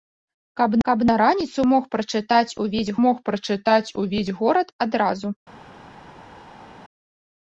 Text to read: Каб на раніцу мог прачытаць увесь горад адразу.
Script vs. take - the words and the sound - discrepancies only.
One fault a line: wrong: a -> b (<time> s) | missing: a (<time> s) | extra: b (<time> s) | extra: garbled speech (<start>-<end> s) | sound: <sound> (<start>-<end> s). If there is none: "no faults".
extra: каб (0.9 s)
extra: мог прачытаць увесь (3.0 s)